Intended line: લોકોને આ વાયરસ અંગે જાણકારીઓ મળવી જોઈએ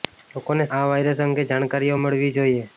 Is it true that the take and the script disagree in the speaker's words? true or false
false